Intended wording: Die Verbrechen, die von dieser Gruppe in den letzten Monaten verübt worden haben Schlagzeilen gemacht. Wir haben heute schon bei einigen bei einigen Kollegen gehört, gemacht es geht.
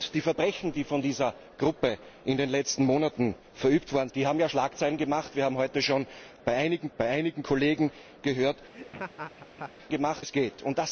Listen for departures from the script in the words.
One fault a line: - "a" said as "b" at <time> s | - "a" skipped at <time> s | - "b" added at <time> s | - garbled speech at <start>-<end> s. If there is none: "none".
none